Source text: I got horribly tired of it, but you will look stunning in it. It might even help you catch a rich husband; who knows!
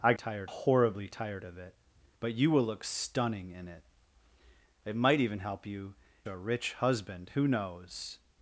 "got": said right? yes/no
no